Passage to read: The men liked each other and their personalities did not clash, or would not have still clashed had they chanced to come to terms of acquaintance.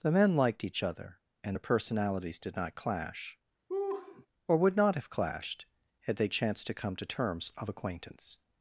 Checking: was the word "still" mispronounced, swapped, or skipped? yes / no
yes